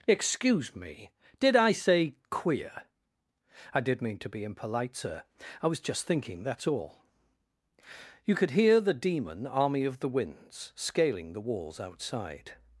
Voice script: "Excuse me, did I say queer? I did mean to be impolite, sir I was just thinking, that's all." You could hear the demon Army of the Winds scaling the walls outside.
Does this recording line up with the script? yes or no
yes